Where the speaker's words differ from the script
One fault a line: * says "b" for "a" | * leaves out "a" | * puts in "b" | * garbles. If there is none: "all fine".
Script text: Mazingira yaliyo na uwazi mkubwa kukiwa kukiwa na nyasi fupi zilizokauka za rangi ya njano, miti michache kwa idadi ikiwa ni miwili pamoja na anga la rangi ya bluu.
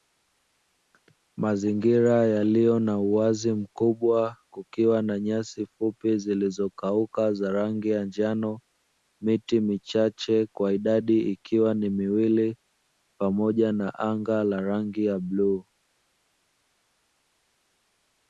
* leaves out "kukiwa"